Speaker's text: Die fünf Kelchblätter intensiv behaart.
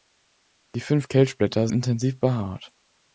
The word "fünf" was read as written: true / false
true